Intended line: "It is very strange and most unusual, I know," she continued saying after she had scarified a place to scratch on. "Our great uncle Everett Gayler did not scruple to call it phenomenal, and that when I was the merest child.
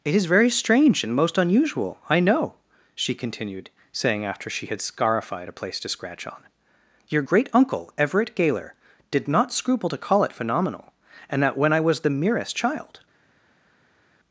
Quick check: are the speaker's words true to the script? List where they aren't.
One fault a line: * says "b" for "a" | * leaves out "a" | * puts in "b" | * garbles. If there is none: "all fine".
* says "Your" for "Our"